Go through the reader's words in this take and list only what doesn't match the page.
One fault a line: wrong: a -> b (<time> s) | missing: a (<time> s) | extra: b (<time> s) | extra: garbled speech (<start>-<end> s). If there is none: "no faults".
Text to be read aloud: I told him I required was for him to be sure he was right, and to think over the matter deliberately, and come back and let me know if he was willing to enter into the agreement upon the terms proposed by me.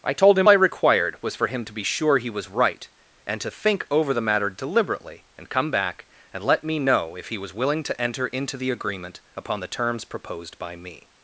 no faults